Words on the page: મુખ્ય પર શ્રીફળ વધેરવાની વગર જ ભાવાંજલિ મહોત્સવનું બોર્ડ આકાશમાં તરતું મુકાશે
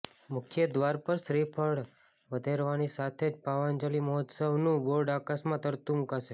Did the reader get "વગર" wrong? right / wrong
wrong